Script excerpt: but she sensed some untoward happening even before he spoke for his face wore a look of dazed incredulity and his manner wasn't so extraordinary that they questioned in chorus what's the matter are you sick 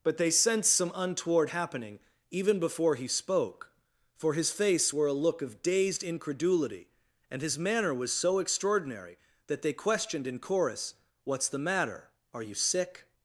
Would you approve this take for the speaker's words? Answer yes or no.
no